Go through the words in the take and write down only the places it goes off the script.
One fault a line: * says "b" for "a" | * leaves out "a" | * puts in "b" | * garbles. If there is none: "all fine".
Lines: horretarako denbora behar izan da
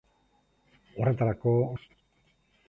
* leaves out "denbora behar izan"